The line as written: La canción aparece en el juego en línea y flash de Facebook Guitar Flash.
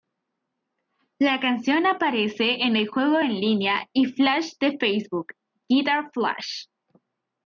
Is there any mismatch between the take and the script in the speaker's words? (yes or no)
no